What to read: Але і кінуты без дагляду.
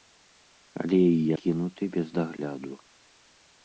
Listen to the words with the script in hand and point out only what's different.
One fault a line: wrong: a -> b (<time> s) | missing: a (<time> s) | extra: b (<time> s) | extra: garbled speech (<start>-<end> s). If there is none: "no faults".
no faults